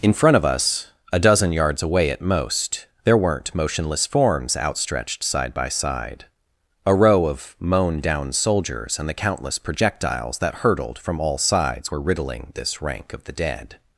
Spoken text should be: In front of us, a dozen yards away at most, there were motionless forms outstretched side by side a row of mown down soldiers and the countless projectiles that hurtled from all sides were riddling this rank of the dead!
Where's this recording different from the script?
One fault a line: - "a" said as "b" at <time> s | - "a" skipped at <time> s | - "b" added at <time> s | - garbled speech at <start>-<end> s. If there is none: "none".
- "were" said as "weren't" at 3.2 s